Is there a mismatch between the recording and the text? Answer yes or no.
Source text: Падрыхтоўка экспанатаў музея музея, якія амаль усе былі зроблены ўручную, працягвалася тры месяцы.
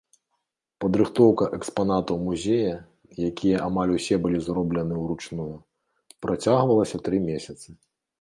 yes